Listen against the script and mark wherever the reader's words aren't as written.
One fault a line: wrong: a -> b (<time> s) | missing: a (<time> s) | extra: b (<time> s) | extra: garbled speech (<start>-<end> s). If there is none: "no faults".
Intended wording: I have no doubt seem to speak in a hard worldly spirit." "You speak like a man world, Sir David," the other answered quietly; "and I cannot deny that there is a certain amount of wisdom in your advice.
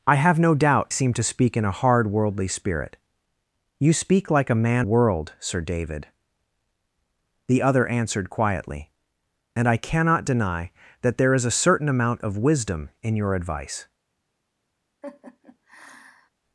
no faults